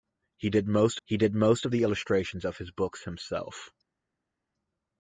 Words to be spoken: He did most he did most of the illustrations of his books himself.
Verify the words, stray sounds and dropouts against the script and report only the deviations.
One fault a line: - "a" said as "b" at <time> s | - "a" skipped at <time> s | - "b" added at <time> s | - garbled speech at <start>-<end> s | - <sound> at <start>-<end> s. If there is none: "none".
none